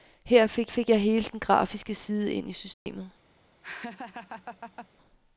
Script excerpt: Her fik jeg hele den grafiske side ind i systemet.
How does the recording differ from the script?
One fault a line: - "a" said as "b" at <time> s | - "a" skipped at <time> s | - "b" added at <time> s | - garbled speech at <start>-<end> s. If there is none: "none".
- "fik" added at 0.7 s